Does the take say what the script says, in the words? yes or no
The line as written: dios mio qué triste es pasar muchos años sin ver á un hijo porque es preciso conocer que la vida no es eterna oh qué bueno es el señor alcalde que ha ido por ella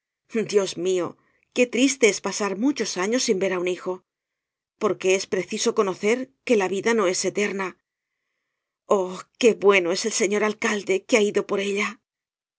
yes